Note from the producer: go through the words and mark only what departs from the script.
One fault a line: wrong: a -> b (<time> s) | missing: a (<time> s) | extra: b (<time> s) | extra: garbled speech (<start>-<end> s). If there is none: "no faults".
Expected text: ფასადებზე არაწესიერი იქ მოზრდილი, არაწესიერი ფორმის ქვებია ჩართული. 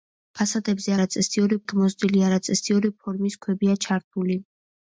no faults